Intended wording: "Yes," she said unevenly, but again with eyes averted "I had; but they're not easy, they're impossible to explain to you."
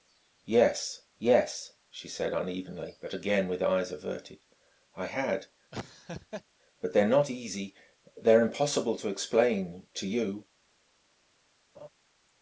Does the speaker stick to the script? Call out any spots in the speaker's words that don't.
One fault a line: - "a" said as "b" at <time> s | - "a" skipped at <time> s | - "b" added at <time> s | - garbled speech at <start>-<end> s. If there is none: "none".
- "yes" added at 1.2 s